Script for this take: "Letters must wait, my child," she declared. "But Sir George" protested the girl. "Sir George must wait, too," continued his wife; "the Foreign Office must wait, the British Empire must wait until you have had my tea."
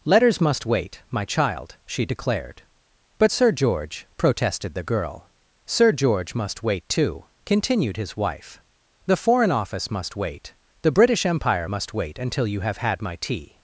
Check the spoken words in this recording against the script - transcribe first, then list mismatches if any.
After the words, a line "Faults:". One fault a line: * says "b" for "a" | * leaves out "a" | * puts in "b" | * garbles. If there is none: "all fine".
"Letters must wait, my child," she declared. "But Sir George" protested the girl. "Sir George must wait, too," continued his wife; "the Foreign Office must wait, the British Empire must wait until you have had my tea."
Faults:
all fine